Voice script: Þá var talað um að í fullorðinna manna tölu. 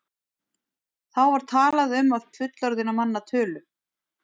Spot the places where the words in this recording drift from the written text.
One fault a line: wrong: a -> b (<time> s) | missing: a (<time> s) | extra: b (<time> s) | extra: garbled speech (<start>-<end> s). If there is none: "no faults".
no faults